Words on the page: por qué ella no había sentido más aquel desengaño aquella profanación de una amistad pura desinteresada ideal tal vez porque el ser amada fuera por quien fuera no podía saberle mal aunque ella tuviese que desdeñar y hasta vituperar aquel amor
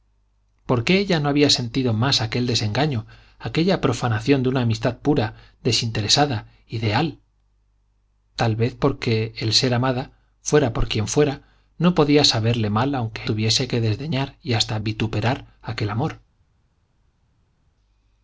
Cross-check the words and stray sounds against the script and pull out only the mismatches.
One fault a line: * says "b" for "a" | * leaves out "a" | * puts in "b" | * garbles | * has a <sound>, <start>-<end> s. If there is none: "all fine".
* leaves out "ella"